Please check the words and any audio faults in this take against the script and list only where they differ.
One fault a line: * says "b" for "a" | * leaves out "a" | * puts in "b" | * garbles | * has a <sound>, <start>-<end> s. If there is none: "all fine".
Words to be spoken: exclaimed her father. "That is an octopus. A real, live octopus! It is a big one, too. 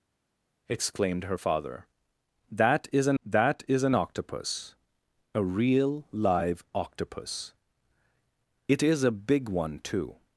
* puts in "that is an"